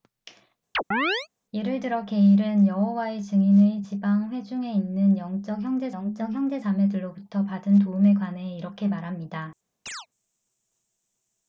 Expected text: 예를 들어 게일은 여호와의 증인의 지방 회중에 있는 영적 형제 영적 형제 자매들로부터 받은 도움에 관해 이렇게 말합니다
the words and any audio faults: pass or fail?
fail